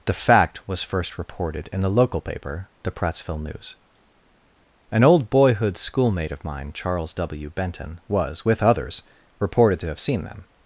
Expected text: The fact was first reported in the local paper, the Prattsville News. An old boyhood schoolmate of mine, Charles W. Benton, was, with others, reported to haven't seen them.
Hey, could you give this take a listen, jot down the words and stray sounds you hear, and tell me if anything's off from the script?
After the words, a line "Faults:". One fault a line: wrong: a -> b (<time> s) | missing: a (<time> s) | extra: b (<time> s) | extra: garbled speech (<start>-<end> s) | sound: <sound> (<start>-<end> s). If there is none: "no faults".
The fact was first reported in the local paper, the Prattsville News. An old boyhood schoolmate of mine, Charles W. Benton, was, with others, reported to have seen them.
Faults:
wrong: haven't -> have (9.9 s)